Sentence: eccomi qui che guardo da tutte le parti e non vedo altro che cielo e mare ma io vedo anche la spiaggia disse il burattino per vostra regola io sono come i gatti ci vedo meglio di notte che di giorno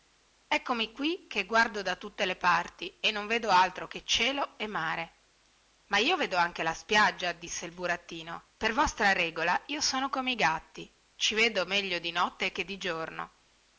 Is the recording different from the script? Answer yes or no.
no